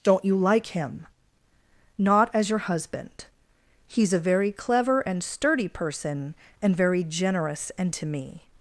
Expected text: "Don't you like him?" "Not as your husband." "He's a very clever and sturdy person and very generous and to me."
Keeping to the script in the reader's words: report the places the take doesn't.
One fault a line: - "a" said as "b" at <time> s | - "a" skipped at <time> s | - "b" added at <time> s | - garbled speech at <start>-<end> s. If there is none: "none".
none